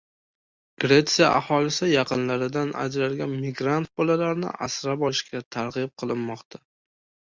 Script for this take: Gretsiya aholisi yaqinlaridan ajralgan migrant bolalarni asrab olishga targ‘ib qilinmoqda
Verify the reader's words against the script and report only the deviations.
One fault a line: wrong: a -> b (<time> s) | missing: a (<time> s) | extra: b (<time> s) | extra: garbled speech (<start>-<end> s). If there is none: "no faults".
no faults